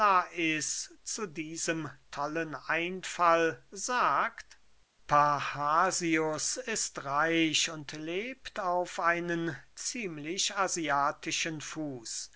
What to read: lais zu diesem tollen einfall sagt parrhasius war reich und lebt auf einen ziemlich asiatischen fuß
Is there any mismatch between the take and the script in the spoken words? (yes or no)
yes